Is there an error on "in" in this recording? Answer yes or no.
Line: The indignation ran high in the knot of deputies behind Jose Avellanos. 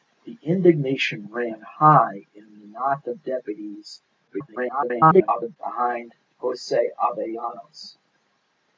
no